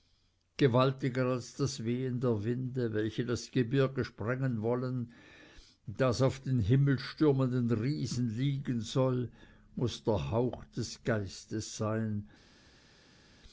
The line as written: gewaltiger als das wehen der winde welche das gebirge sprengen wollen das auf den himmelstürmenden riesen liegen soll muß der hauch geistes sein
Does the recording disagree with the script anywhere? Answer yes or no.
yes